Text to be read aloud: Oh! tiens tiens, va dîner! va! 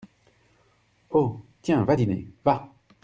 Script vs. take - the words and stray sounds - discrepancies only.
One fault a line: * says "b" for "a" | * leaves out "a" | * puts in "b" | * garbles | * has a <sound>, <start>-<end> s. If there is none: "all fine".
* leaves out "tiens"